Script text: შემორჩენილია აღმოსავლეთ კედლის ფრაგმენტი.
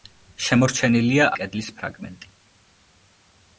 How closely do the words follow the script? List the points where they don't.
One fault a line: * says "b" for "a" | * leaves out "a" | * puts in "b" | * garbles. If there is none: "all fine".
* leaves out "აღმოსავლეთ"